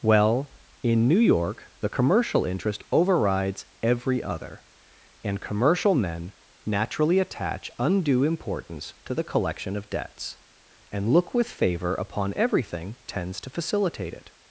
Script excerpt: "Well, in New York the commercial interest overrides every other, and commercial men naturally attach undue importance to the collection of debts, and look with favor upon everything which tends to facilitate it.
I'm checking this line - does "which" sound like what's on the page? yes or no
no